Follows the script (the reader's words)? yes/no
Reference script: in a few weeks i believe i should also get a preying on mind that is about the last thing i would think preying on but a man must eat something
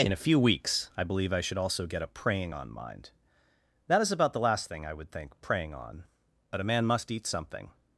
yes